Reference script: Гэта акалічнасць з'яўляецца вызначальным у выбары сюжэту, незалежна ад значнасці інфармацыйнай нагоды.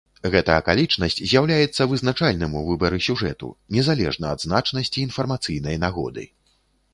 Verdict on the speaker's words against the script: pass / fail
pass